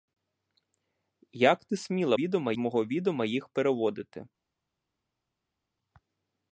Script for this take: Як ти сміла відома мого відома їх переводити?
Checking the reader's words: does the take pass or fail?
pass